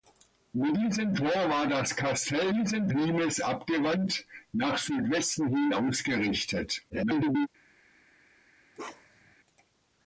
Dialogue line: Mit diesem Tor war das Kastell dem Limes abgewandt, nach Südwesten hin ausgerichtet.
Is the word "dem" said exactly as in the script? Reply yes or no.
no